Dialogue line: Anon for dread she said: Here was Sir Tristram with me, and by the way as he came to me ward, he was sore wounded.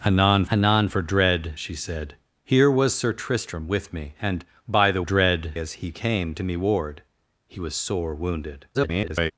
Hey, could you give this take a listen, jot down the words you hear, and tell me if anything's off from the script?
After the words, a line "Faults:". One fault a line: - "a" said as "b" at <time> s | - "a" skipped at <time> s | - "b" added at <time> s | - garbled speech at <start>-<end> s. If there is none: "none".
Anon anon for dread she said: Here was Sir Tristram with me, and by the dread as he came to me ward, he was sore wounded. [garbled]
Faults:
- "anon" added at 0.5 s
- "way" said as "dread" at 5.0 s
- garbled speech at 8.7-9.3 s